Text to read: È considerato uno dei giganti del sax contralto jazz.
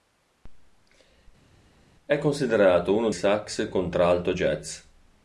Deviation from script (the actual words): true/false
true